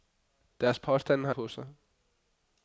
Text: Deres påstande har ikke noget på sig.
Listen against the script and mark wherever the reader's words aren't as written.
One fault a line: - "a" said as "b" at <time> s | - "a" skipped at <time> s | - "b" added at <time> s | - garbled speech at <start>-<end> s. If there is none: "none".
- "ikke noget" skipped at 1.4 s